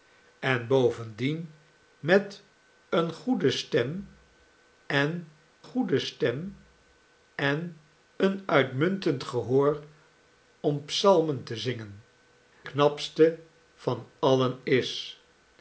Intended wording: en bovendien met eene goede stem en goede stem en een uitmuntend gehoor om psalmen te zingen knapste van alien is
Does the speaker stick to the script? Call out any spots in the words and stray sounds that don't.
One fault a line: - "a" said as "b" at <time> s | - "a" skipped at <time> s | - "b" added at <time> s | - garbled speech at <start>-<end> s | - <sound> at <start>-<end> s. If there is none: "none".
none